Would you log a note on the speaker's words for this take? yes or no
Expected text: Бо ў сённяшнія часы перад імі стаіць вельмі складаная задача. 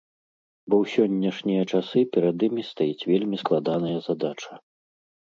no